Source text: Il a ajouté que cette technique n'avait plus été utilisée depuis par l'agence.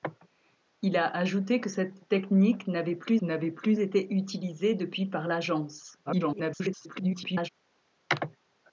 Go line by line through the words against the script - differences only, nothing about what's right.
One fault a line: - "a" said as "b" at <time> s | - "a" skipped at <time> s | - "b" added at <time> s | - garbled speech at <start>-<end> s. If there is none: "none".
- "n'avait plus" added at 3.2 s
- garbled speech at 6.1-7.5 s